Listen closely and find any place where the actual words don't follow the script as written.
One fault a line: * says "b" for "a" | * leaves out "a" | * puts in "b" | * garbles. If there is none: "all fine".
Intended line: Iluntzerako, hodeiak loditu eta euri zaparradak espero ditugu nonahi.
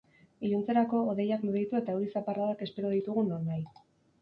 all fine